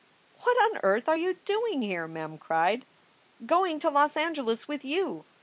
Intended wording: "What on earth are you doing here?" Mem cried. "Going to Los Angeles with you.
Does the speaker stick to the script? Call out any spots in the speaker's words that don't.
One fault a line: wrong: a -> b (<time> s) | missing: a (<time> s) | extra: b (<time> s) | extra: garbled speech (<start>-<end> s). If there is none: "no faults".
no faults